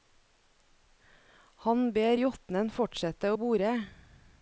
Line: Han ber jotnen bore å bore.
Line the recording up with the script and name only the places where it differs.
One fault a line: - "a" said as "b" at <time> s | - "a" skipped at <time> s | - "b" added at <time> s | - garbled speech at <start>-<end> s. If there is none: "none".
- "bore" said as "fortsette" at 2.7 s